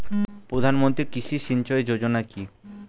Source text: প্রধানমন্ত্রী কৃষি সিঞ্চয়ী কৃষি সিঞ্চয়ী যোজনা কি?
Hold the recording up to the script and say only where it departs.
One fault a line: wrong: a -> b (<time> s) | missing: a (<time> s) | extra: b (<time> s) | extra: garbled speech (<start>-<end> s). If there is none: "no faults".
missing: কৃষি সিঞ্চয়ী (1.8 s)